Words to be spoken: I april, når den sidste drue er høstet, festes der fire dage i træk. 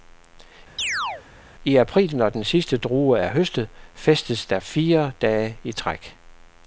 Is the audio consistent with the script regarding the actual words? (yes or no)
yes